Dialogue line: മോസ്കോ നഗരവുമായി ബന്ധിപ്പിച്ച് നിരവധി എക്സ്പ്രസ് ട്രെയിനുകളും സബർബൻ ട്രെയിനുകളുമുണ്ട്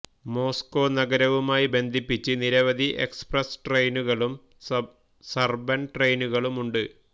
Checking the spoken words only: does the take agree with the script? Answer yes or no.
yes